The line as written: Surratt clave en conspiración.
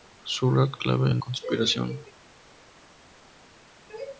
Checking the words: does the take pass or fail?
pass